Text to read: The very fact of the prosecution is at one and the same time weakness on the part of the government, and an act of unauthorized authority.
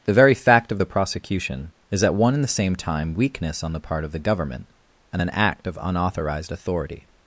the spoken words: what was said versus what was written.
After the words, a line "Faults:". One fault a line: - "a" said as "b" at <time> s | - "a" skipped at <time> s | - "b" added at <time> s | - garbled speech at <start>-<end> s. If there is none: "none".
The very fact of the prosecution is at one and the same time weakness on the part of the government, and an act of unauthorized authority.
Faults:
none